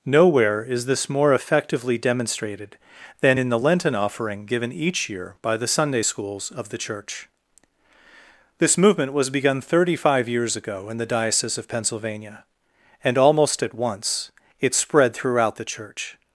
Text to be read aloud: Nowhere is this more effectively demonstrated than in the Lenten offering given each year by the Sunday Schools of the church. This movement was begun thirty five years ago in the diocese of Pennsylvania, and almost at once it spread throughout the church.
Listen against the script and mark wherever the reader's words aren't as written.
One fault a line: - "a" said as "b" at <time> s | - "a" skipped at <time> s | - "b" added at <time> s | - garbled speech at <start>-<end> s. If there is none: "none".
none